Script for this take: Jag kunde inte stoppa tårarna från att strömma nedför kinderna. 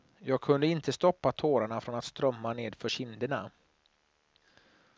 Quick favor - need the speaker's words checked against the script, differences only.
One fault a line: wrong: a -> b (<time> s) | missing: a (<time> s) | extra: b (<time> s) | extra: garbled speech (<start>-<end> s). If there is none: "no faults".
no faults